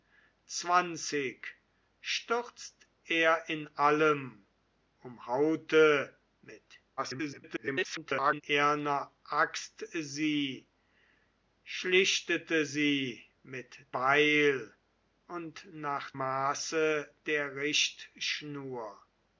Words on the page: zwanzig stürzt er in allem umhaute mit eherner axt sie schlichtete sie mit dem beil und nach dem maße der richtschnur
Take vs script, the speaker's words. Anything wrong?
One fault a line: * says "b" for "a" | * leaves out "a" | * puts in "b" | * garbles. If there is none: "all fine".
* garbles
* leaves out "dem"
* leaves out "dem"